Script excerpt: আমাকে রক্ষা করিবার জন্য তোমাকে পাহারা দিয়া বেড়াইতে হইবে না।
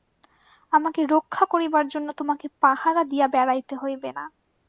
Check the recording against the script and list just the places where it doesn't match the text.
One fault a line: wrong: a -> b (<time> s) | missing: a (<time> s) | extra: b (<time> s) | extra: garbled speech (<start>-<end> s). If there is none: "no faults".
no faults